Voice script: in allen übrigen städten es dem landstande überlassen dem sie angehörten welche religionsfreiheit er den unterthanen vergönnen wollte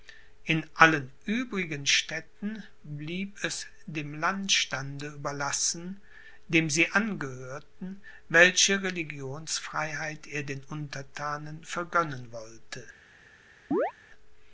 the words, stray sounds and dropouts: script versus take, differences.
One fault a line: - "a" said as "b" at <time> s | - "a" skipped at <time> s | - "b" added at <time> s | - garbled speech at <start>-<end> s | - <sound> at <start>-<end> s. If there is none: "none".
- "blieb" added at 2.8 s
- chirp at 13.7-13.9 s